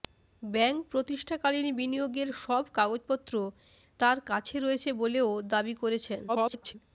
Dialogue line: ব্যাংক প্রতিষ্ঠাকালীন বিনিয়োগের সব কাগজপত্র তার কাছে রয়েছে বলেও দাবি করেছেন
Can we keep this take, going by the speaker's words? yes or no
no